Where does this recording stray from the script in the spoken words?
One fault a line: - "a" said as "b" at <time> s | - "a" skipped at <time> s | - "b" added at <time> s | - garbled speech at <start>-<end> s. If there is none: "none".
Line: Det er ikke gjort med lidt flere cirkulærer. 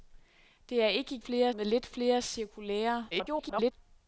- "gjort" said as "flere" at 1.2 s
- garbled speech at 3.1-3.7 s